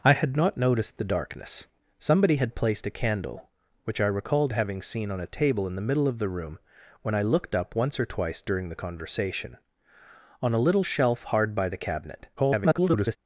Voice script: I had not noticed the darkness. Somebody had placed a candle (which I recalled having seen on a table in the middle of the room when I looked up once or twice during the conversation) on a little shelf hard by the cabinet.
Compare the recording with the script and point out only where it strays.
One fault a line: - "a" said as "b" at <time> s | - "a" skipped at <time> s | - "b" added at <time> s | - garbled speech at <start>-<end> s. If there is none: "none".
- garbled speech at 12.4-13.2 s